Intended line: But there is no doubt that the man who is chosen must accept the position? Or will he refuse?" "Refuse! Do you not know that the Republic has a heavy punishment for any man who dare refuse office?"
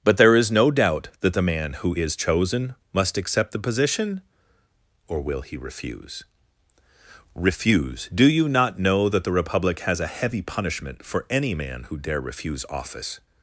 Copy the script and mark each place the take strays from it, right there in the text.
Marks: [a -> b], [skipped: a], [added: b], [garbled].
But there is no doubt that the man who is chosen must accept the position? Or will he refuse?" "Refuse! Do you not know that the Republic has a heavy punishment for any man who dare refuse office?"